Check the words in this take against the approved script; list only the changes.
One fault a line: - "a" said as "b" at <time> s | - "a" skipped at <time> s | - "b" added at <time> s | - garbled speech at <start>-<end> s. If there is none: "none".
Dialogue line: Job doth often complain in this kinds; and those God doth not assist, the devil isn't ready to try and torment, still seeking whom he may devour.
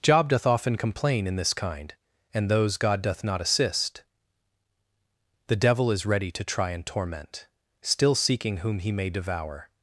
- "kinds" said as "kind" at 1.5 s
- "isn't" said as "is" at 5.9 s